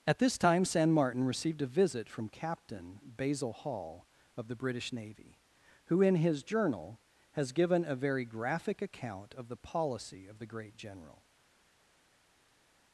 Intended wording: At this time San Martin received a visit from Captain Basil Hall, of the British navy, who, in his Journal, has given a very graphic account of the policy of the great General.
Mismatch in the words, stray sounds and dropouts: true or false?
false